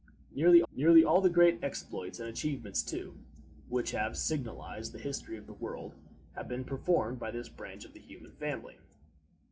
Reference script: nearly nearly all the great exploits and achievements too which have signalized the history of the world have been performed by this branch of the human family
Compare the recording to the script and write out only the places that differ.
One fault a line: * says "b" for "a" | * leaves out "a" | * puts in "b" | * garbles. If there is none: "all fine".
all fine